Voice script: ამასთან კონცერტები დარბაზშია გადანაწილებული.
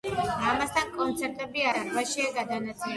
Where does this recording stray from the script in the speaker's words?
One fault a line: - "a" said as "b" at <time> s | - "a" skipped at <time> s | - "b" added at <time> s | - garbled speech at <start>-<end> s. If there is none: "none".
none